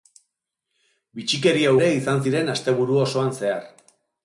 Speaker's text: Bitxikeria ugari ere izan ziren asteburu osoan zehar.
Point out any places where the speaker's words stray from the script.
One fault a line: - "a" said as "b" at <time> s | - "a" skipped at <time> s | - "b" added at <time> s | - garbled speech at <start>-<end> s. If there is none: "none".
- "ugari" skipped at 1.7 s